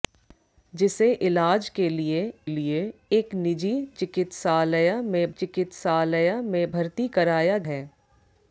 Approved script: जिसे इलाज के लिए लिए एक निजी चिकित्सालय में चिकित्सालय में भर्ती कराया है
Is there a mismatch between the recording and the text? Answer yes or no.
no